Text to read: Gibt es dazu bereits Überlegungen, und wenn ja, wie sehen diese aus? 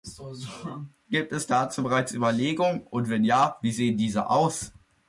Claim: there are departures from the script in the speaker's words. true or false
false